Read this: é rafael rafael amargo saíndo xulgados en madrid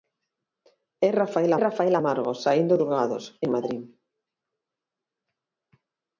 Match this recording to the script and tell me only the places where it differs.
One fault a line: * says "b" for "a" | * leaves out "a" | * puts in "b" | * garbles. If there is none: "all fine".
all fine